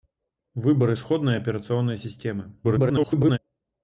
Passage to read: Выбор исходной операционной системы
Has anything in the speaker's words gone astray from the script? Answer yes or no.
yes